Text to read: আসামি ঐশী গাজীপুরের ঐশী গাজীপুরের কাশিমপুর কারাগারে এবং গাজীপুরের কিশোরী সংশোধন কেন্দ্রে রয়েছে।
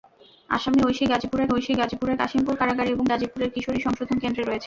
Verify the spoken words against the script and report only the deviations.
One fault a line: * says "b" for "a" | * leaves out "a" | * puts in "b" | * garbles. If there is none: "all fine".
all fine